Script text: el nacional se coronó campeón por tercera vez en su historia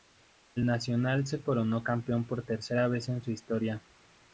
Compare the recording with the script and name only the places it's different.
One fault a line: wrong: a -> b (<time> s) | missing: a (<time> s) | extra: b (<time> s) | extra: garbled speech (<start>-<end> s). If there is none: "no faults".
no faults